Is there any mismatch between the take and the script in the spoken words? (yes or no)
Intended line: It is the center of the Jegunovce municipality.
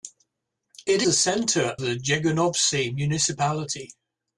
yes